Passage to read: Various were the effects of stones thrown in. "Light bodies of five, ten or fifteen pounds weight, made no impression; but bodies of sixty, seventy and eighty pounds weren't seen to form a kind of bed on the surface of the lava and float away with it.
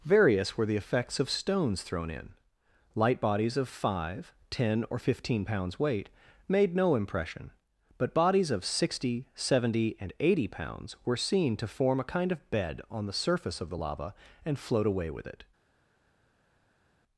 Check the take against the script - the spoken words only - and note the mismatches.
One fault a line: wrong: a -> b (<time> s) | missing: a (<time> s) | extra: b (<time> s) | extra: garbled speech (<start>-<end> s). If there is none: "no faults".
wrong: weren't -> were (11.0 s)